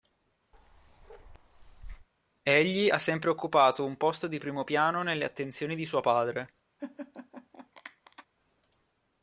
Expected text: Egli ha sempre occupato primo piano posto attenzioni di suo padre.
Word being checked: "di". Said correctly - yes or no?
yes